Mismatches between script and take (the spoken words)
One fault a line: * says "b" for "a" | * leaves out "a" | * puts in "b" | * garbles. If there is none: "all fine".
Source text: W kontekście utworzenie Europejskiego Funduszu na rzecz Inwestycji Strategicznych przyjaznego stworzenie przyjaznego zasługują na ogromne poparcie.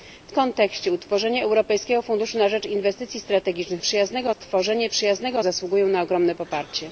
all fine